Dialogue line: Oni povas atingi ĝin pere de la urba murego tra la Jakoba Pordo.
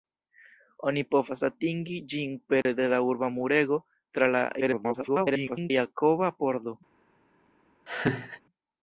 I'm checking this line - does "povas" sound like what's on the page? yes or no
yes